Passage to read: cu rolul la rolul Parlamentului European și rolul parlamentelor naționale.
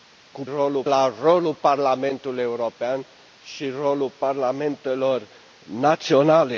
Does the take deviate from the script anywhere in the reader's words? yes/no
no